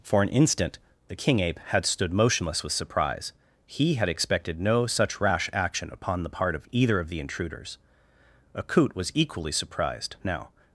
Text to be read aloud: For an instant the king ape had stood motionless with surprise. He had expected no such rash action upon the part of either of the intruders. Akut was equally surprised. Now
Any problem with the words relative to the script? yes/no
no